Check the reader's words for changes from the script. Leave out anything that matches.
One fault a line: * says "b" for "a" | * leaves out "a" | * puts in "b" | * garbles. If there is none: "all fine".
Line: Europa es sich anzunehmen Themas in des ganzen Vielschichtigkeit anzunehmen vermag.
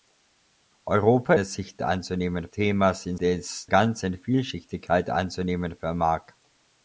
all fine